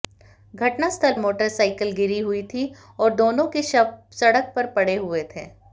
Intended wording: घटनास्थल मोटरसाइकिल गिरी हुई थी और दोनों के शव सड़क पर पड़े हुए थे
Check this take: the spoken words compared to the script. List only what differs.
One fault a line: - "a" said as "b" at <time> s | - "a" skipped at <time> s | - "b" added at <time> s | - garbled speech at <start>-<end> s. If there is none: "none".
none